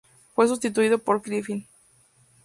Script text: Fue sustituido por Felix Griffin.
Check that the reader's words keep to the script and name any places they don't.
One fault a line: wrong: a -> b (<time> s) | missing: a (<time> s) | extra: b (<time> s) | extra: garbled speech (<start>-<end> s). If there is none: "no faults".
missing: Felix (1.2 s)